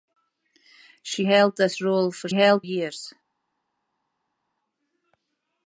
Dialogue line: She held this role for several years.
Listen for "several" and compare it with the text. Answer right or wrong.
wrong